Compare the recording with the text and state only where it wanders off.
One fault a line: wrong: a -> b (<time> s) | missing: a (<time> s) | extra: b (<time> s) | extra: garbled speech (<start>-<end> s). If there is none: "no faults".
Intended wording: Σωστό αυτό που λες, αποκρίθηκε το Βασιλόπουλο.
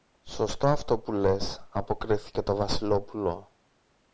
no faults